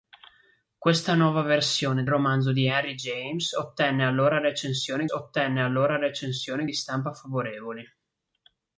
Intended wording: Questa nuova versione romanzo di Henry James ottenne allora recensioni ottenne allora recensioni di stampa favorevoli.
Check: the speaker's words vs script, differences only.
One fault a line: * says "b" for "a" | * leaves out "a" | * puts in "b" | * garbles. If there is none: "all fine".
all fine